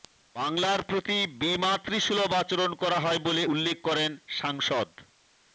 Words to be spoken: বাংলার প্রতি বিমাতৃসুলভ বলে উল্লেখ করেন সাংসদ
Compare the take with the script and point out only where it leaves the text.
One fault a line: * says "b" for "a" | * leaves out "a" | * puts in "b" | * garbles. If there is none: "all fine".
* puts in "আচরণ করা হয়"